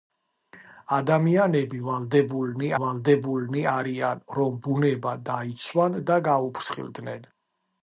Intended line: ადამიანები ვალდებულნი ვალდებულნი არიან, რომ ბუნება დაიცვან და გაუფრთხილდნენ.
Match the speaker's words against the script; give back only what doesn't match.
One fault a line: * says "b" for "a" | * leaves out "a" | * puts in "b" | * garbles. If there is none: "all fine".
all fine